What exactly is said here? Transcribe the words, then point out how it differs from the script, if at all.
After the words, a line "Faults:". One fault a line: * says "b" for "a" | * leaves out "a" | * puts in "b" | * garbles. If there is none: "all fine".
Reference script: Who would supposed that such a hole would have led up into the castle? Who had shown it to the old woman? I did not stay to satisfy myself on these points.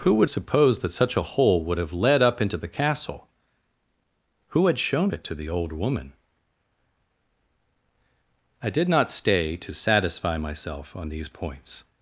Who would supposed that such a hole would have led up into the castle? Who had shown it to the old woman? I did not stay to satisfy myself on these points.
Faults:
all fine